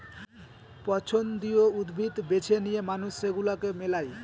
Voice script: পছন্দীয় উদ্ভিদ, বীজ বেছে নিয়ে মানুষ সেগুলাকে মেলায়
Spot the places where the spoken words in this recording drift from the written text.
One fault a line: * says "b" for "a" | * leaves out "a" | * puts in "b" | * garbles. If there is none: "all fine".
* leaves out "বীজ"